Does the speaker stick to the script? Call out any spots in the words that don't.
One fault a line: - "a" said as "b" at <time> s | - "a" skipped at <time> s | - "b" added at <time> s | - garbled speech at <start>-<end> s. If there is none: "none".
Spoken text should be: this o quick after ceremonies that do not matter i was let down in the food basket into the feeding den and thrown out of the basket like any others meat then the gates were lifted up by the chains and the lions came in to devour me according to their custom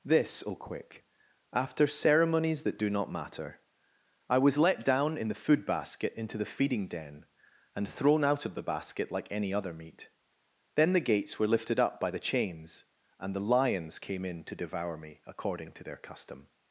- "others" said as "other" at 9.5 s